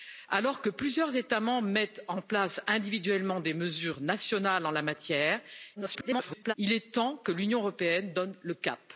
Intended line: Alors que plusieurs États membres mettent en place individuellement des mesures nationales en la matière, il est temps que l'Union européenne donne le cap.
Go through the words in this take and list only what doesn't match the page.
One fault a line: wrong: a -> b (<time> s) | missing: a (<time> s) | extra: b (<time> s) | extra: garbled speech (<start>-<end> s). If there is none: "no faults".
extra: garbled speech (5.8-6.5 s)